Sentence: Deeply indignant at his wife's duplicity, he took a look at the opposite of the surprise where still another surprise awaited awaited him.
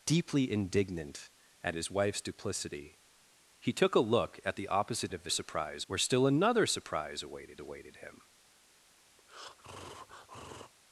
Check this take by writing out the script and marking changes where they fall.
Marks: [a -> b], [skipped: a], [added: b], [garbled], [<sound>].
Deeply indignant at his wife's duplicity, he took a look at the opposite of the surprise where still another surprise awaited awaited him. [breath]